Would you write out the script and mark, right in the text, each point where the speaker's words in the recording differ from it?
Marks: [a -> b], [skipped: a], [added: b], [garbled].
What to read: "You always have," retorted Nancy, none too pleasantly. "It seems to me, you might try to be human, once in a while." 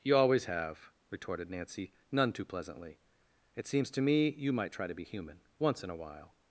"You always have," retorted Nancy, none too pleasantly. "It seems to me, you might try to be human, once in a while."